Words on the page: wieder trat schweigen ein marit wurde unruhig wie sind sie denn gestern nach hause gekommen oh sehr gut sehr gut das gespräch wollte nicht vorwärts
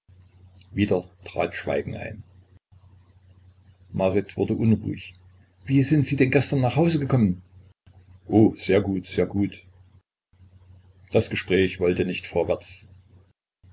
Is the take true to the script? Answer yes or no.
yes